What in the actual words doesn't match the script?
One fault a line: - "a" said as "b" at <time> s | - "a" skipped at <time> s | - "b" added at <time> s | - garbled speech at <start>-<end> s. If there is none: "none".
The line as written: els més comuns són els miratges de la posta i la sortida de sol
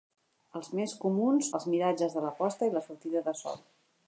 - "són" skipped at 1.5 s